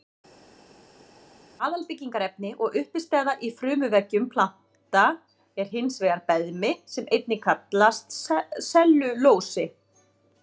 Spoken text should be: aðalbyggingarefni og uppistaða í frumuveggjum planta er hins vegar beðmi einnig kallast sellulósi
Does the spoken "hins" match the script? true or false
true